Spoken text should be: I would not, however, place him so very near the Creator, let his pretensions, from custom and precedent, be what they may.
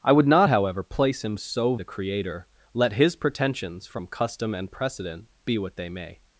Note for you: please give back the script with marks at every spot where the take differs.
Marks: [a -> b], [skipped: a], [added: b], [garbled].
I would not, however, place him so [skipped: very near] the Creator, let his pretensions, from custom and precedent, be what they may.